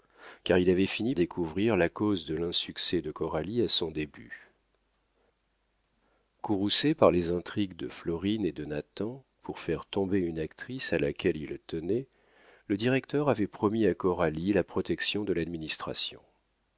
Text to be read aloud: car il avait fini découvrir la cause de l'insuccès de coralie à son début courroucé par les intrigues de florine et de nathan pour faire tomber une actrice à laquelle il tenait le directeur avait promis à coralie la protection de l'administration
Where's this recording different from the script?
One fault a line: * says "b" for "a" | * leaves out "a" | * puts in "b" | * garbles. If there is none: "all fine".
all fine